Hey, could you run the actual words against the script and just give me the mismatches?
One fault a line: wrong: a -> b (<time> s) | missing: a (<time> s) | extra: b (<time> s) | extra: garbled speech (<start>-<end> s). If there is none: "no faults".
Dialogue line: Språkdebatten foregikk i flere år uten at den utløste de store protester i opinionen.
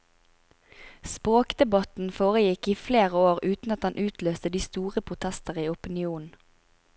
no faults